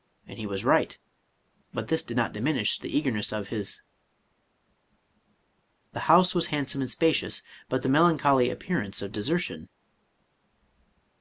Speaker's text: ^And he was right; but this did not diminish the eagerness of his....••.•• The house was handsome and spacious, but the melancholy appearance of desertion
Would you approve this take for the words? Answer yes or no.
yes